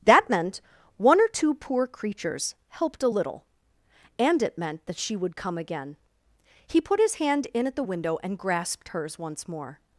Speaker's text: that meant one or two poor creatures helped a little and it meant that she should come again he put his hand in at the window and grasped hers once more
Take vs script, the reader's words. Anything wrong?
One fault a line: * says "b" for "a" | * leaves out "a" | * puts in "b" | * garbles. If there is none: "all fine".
* says "would" for "should"